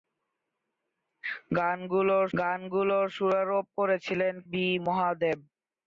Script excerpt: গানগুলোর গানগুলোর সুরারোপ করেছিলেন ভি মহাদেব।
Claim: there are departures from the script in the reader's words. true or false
false